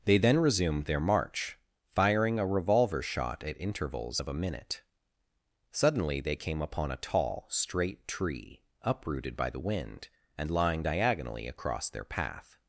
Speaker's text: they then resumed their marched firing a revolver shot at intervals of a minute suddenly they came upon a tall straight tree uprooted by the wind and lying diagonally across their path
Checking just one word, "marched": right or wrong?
wrong